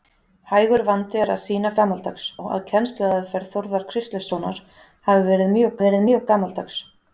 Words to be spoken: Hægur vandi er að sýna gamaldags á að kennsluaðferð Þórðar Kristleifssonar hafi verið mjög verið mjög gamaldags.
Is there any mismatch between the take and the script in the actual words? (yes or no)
no